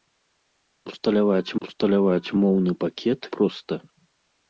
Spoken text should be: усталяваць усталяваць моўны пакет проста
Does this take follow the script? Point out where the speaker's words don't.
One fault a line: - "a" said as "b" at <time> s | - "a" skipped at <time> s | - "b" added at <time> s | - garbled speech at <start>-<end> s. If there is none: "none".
none